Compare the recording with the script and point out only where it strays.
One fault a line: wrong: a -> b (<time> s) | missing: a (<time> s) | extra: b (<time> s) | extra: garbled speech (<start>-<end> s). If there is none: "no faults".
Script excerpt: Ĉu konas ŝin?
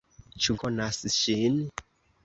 no faults